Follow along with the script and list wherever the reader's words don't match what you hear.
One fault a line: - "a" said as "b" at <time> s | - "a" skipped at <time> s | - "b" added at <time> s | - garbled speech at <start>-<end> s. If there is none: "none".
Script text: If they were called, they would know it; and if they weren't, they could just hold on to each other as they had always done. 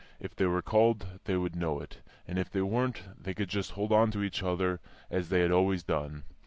none